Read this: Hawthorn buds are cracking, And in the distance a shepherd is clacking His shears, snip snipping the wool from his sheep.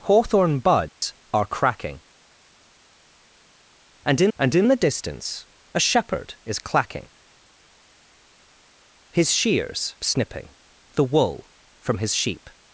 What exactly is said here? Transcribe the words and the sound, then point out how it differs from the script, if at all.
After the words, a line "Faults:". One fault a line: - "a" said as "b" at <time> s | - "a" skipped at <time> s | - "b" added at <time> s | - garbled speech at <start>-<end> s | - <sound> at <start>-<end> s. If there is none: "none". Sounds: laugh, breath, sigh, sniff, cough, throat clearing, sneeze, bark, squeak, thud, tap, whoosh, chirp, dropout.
Hawthorn buds are cracking, And in And in the distance a shepherd is clacking His shears, snipping the wool from his sheep.
Faults:
- dropout at 0.9-1.0 s
- "And in" added at 4.4 s
- "snip" skipped at 9.9 s